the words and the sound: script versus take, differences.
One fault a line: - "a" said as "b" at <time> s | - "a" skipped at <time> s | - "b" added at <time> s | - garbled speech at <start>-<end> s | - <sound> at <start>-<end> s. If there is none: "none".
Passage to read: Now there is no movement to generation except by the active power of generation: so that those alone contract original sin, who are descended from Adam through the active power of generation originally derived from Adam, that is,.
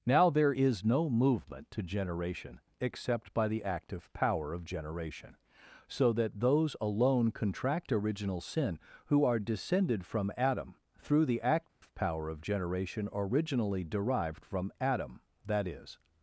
- dropout at 11.7-11.8 s